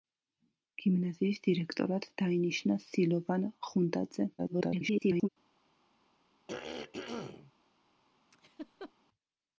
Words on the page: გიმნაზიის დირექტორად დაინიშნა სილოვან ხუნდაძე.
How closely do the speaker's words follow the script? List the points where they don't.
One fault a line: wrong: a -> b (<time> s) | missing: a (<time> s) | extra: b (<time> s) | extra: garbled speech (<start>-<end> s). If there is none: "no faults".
extra: garbled speech (4.4-5.3 s)